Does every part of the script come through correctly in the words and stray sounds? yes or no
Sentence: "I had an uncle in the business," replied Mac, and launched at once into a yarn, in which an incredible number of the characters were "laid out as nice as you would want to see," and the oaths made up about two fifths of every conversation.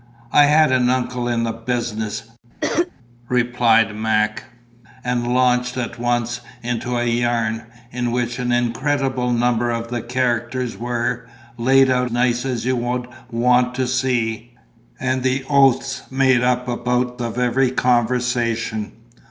no